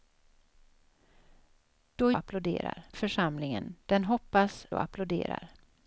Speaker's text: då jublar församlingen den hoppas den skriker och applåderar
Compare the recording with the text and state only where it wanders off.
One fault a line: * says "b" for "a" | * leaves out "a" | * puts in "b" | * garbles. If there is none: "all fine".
* says "applåderar" for "jublar"
* leaves out "den skriker"